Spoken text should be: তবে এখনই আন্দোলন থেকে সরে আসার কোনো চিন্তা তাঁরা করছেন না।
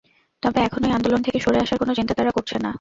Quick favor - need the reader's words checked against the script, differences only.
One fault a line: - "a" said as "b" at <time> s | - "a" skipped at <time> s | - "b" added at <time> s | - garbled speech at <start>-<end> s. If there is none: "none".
none